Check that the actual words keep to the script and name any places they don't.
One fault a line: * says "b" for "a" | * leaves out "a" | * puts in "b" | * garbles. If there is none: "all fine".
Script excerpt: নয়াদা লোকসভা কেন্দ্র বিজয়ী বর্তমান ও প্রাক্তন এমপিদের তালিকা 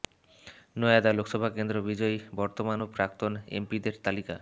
all fine